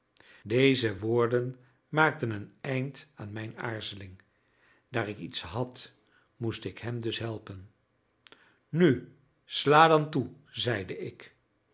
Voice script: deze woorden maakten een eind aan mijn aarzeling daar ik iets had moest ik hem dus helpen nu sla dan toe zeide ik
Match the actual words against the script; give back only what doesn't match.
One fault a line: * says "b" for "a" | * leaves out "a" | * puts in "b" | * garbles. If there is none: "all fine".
all fine